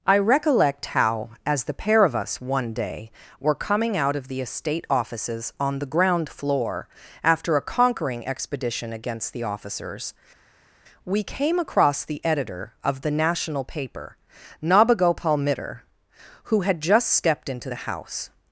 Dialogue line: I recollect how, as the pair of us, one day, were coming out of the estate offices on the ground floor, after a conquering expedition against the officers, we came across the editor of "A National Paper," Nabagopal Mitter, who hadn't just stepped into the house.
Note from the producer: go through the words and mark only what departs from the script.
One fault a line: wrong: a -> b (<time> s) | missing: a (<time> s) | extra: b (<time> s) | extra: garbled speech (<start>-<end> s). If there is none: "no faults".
wrong: A -> The (13.0 s)
wrong: hadn't -> had (16.6 s)